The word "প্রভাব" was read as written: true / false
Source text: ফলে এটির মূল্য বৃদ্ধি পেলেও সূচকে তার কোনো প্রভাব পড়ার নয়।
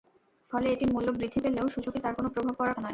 true